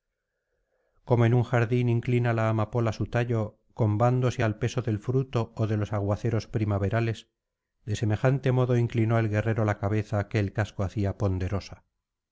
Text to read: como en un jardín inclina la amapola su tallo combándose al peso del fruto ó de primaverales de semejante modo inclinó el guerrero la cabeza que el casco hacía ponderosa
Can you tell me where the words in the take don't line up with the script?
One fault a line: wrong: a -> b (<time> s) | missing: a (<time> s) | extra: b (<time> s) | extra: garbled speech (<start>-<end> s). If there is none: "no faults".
extra: los aguaceros (5.8 s)